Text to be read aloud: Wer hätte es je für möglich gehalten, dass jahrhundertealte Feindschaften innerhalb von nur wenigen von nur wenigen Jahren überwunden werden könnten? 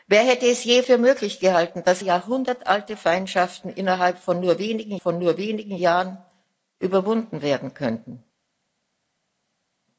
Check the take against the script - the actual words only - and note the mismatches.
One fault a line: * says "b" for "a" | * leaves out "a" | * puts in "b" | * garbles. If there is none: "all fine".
all fine